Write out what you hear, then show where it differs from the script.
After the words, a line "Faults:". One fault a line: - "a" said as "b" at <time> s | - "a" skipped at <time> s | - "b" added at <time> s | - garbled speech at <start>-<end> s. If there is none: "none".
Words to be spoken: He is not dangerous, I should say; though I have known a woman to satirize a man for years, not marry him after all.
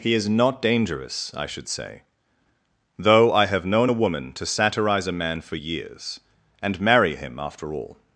He is not dangerous, I should say; though I have known a woman to satirize a man for years, and marry him after all.
Faults:
- "not" said as "and" at 6.6 s